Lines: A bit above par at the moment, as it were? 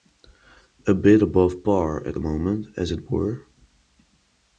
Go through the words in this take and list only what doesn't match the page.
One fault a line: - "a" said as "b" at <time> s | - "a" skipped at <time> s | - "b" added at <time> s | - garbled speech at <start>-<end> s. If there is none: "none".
none